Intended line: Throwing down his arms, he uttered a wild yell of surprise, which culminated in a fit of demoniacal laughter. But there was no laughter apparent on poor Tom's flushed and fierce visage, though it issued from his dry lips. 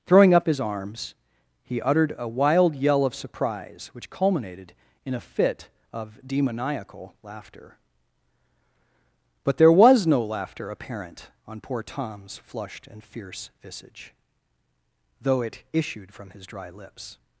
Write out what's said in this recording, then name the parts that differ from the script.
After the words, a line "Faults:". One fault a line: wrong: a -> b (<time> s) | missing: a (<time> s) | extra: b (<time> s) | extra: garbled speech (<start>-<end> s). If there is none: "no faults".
Throwing up his arms, he uttered a wild yell of surprise, which culminated in a fit of demoniacal laughter. But there was no laughter apparent on poor Tom's flushed and fierce visage, though it issued from his dry lips.
Faults:
wrong: down -> up (0.3 s)